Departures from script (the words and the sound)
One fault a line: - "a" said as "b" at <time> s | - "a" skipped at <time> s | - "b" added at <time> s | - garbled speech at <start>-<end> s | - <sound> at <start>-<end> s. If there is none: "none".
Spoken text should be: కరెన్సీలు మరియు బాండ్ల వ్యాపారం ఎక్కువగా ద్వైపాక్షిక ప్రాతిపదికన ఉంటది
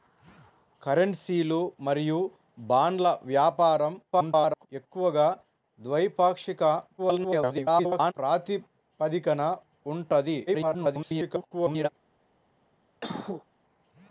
- garbled speech at 4.1-4.7 s
- garbled speech at 7.0-8.1 s
- garbled speech at 10.5-11.9 s
- cough at 13.0-13.4 s